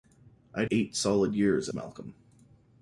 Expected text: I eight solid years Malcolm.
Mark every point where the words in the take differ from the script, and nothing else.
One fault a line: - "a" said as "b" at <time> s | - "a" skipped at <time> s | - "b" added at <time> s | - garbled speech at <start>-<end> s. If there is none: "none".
none